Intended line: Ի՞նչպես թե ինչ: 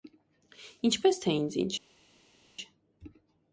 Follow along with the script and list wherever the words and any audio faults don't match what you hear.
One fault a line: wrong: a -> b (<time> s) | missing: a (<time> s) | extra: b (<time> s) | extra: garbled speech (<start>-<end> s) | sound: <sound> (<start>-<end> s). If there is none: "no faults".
extra: ինձ (1.4 s)